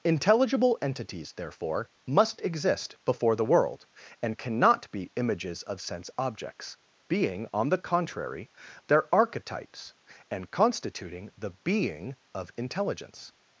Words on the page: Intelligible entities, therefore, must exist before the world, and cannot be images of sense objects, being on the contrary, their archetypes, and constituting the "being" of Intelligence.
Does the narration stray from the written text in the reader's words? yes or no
no